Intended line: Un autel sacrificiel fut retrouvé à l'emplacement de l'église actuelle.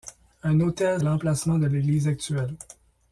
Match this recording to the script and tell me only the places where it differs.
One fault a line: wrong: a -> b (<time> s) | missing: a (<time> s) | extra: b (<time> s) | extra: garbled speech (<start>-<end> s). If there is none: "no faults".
missing: sacrificiel fut retrouvé (1.0 s)